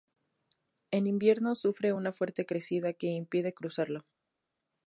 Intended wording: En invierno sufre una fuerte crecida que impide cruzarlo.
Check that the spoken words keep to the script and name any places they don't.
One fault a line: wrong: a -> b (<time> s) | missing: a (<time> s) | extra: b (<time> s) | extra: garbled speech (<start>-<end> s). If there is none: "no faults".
no faults